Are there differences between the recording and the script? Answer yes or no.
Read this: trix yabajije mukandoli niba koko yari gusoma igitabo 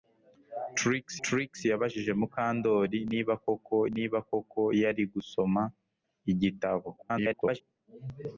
yes